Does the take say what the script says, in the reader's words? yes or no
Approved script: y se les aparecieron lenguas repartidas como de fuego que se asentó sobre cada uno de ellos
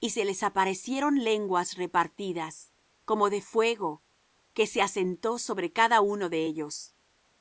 yes